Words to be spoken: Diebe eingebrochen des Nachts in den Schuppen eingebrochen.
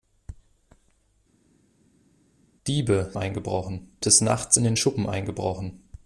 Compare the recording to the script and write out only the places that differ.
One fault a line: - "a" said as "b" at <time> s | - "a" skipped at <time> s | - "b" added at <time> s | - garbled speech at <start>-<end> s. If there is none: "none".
none